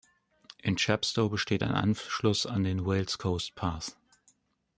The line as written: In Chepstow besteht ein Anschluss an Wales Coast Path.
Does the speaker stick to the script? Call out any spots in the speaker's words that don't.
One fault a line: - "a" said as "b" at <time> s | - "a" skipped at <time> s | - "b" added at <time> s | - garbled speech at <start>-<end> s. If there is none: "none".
- "den" added at 2.6 s